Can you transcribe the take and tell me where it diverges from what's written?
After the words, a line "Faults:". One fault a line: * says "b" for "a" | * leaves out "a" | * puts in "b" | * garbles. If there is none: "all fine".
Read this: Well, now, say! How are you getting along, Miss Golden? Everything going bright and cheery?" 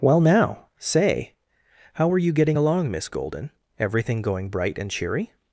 Well, now, say! How were you getting along, Miss Golden? Everything going bright and cheery?"
Faults:
* says "were" for "are"